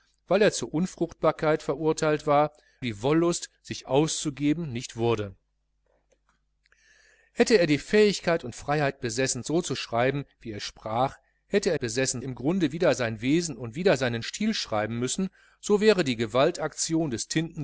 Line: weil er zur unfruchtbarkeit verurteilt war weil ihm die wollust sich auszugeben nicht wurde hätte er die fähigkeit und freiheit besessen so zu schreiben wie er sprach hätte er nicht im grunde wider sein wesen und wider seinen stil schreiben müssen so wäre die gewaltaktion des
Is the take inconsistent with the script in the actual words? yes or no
yes